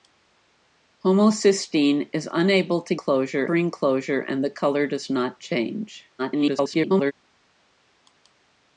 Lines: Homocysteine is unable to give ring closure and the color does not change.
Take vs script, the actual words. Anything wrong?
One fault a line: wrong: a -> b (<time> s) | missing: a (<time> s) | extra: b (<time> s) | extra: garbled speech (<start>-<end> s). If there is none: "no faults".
wrong: give -> closure (3.0 s)
extra: garbled speech (6.2-7.1 s)